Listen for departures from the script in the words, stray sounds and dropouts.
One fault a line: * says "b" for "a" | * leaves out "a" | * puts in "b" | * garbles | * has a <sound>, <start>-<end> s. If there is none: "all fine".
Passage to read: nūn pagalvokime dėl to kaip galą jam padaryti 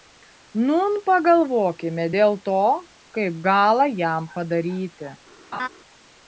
* has a laugh, 5.5-5.7 s